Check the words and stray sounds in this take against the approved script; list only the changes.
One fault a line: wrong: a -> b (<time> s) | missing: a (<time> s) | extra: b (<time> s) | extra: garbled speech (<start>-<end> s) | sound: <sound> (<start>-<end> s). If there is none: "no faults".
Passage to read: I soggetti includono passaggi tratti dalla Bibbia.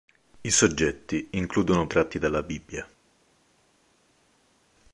missing: passaggi (1.9 s)